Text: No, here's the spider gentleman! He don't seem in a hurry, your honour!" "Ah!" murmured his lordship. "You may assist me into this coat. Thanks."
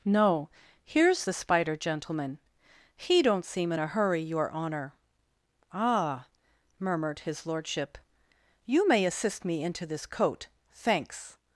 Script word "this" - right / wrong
right